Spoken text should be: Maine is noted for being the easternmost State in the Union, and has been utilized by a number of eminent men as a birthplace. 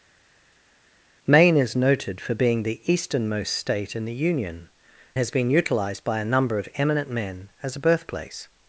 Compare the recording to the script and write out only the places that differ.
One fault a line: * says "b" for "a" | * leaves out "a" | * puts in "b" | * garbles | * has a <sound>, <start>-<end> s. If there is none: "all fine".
* leaves out "and"